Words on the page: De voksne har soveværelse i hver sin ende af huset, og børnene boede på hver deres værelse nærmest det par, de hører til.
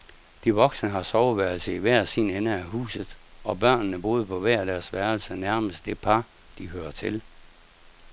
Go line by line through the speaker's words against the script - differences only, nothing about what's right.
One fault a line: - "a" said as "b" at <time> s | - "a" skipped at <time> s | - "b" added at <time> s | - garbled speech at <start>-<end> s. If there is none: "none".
none